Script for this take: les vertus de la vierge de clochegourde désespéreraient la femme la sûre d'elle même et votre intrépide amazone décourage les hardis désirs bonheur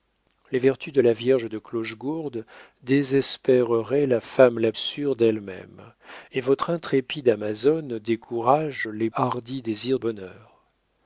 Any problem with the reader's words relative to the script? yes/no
no